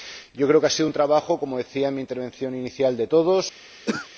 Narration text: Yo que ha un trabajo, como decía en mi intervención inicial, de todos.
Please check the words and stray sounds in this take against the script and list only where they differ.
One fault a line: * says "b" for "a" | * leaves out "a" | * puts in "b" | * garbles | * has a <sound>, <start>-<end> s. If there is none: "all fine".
* puts in "creo"
* puts in "sido"
* has a throat clearing, 3.9-4.1 s